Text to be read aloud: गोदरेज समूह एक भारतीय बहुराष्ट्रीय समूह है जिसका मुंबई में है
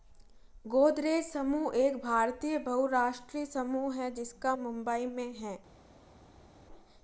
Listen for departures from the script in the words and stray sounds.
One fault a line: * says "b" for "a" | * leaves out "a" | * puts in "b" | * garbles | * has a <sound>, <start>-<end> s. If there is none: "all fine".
all fine